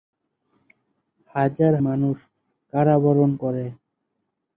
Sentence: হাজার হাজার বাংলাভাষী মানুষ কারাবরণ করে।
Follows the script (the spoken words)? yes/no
no